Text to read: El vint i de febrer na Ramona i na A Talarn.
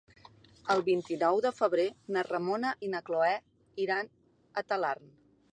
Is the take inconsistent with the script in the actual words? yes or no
yes